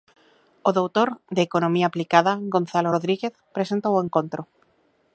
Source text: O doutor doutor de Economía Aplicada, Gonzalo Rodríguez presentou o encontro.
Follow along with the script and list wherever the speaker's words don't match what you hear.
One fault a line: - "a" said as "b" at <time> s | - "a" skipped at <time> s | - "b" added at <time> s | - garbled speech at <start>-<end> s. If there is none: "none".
- "doutor" skipped at 1.1 s